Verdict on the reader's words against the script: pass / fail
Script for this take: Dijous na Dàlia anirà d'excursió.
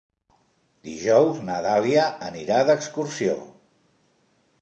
pass